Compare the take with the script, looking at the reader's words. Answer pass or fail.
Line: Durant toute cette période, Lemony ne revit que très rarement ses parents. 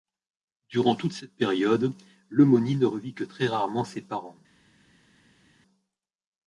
pass